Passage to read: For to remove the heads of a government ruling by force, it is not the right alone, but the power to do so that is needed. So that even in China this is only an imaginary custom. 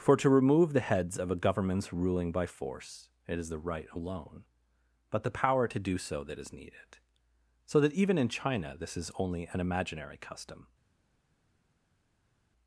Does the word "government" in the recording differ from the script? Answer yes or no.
yes